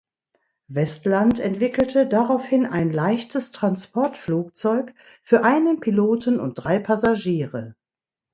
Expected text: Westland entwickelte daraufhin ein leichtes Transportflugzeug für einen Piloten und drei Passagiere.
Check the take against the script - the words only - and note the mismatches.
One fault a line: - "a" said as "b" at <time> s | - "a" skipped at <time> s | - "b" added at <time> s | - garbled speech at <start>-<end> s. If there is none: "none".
none